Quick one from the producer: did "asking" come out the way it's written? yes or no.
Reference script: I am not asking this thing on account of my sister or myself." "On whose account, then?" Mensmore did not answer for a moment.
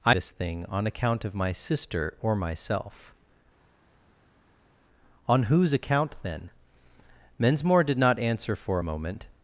no